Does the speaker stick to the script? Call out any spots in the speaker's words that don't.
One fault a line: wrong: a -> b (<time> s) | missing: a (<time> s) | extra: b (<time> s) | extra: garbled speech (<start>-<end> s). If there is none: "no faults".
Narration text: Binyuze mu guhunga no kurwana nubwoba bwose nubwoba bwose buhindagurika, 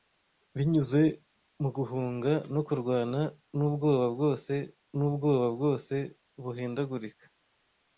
no faults